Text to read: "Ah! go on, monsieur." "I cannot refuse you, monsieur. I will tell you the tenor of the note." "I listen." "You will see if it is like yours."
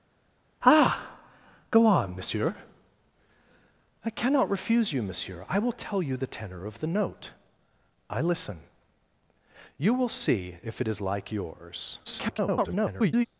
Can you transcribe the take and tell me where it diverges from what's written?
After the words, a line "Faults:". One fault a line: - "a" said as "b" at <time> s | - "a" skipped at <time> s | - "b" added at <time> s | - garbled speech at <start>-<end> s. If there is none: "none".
"Ah! go on, monsieur." "I cannot refuse you, monsieur. I will tell you the tenor of the note." "I listen." "You will see if it is like yours." [garbled]
Faults:
- garbled speech at 12.0-13.3 s